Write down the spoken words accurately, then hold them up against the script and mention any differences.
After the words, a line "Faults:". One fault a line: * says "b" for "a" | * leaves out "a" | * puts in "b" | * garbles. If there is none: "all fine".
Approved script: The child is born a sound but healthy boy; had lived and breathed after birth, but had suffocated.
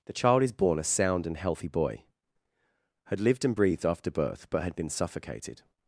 The child is born a sound and healthy boy; had lived and breathed after birth, but had been suffocated.
Faults:
* says "and" for "but"
* puts in "been"